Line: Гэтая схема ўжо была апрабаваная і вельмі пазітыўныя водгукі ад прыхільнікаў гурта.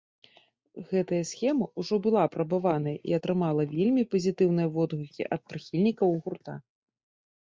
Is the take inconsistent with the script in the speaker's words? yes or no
yes